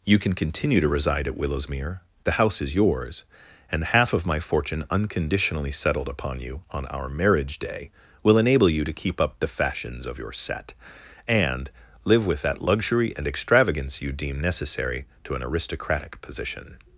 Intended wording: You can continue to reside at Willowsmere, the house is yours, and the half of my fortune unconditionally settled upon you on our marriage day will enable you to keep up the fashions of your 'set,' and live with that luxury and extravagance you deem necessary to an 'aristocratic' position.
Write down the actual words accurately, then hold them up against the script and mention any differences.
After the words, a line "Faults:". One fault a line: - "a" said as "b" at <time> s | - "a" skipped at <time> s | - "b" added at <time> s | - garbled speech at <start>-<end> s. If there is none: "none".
You can continue to reside at Willowsmere, the house is yours, and half of my fortune unconditionally settled upon you on our marriage day will enable you to keep up the fashions of your 'set,' and live with that luxury and extravagance you deem necessary to an 'aristocratic' position.
Faults:
- "the" skipped at 3.8 s